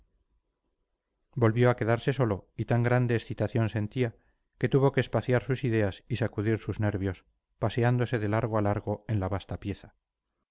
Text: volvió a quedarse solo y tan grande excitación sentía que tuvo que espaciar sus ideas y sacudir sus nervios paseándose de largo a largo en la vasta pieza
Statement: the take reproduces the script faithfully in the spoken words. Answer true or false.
true